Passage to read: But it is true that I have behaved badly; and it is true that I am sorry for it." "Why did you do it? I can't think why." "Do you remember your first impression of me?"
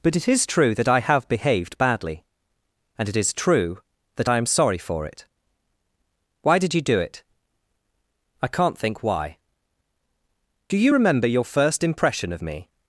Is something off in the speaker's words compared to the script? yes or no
no